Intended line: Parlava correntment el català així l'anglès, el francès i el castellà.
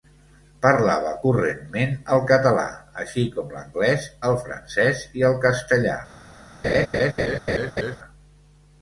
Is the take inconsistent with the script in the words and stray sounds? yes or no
yes